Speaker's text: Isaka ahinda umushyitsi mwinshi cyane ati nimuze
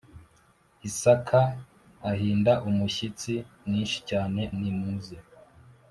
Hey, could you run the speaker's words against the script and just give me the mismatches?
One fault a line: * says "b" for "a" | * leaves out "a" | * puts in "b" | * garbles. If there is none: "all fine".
* leaves out "ati"